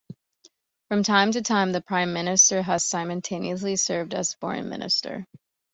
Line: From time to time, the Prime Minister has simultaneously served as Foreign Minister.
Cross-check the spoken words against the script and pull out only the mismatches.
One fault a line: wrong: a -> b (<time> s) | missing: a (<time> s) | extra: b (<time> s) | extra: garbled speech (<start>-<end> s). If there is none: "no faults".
no faults